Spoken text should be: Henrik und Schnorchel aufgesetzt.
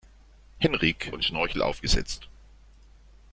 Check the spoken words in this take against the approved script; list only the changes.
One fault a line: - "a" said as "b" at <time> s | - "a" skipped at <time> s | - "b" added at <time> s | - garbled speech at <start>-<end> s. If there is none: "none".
none